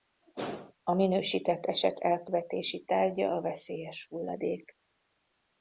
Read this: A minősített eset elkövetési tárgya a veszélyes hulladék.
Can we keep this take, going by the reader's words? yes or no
yes